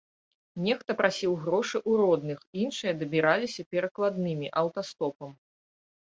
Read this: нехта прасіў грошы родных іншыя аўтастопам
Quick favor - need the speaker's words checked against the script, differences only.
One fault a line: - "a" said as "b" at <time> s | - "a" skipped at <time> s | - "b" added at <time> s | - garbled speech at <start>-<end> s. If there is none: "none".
- "ў" added at 1.8 s
- "дабіраліся перакладнымі" added at 3.0 s